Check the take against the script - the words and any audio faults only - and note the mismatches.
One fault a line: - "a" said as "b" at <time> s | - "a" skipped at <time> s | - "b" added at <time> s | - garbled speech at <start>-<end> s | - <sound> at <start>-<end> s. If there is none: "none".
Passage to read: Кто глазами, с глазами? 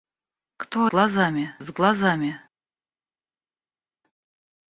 none